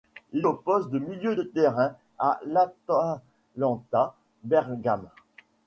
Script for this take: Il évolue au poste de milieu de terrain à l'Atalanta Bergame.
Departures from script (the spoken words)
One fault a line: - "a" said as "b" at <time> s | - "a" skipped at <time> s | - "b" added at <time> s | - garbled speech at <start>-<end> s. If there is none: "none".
- "évolue" skipped at 0.5 s